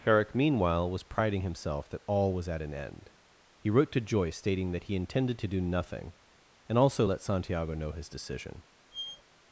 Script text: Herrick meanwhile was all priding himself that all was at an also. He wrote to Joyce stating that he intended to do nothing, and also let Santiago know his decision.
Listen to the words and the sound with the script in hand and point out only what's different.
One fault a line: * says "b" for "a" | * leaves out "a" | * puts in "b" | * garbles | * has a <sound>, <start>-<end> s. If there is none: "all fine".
* leaves out "all"
* says "end" for "also"
* has a squeak, 8.9-9.2 s